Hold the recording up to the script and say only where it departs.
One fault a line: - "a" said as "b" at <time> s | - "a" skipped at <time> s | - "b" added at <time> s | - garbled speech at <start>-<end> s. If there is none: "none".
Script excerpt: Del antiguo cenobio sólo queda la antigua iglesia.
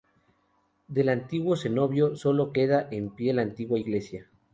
- "en pie" added at 2.9 s